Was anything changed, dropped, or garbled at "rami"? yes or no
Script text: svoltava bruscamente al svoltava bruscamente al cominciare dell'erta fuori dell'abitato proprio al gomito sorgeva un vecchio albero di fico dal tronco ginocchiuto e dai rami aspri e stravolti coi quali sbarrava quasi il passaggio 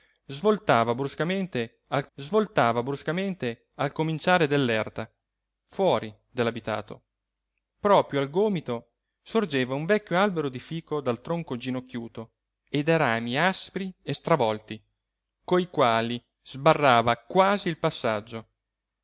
no